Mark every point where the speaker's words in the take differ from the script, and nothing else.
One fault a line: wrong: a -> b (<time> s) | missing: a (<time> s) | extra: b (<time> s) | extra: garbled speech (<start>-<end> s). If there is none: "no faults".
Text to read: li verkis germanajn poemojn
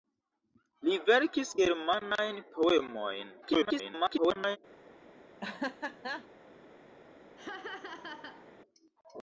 extra: garbled speech (3.4-4.6 s)